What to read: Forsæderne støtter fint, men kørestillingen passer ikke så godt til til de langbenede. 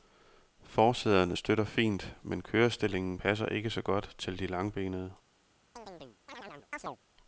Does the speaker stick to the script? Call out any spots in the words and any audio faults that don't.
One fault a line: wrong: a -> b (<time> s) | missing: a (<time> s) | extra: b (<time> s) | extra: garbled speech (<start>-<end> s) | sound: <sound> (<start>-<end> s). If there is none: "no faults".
missing: til (4.4 s)
sound: chirp (5.8-7.0 s)